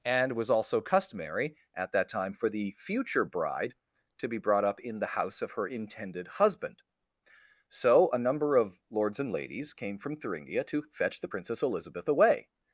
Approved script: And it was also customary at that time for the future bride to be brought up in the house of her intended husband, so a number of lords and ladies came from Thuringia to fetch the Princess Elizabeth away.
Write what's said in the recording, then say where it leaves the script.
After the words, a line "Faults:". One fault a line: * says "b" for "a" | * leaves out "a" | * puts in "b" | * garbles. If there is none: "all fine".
And was also customary at that time for the future bride to be brought up in the house of her intended husband, so a number of lords and ladies came from Thuringia to fetch the Princess Elizabeth away.
Faults:
* leaves out "it"